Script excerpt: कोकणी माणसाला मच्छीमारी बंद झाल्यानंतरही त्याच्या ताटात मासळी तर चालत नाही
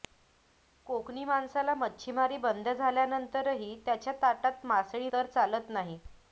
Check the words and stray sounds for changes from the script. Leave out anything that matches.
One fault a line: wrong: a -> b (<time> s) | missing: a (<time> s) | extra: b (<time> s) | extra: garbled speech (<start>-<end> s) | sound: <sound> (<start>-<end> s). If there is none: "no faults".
no faults